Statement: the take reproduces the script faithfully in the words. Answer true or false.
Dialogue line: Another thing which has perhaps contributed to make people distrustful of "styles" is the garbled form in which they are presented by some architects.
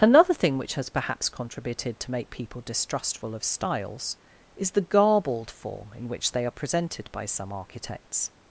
true